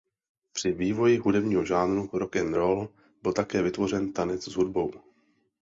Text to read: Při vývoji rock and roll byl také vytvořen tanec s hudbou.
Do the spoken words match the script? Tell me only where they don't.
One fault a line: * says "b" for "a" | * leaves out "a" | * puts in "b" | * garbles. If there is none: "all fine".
* puts in "hudebního žánru"